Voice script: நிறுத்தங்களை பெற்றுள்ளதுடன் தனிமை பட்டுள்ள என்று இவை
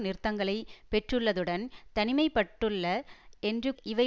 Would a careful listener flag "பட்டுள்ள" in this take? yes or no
no